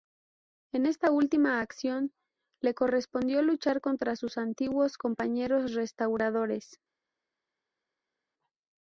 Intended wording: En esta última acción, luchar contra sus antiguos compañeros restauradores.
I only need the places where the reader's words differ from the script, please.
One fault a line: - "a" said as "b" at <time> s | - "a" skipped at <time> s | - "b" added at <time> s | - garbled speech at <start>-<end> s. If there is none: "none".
- "le correspondió" added at 2.6 s